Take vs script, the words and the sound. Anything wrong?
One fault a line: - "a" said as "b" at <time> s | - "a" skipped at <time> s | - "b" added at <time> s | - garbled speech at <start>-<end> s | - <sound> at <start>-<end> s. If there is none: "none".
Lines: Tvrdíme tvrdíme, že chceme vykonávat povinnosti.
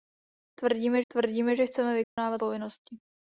- dropout at 2.0-2.2 s